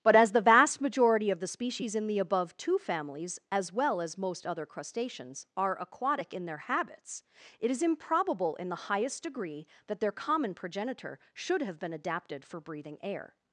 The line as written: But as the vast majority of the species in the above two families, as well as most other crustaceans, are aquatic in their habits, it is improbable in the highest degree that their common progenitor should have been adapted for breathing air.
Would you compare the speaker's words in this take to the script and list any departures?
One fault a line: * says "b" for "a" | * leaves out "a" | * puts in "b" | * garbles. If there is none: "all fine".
all fine